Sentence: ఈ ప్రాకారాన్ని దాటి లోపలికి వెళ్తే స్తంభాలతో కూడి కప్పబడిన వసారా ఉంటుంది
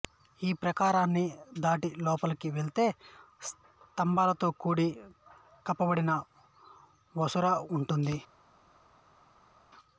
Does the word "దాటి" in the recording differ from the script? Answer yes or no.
no